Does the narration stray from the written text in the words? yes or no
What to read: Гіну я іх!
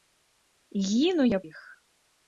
no